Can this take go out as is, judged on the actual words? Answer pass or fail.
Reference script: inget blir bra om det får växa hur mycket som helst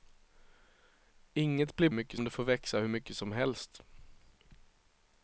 fail